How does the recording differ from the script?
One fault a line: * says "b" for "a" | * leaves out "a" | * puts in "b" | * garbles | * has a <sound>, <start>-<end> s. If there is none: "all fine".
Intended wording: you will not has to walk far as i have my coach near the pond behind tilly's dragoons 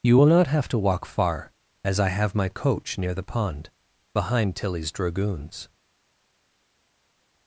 * says "have" for "has"